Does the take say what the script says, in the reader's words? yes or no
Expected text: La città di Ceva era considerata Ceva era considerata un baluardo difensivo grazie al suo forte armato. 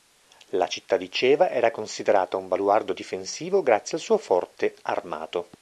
no